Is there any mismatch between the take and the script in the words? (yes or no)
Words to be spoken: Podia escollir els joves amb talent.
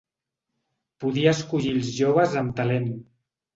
no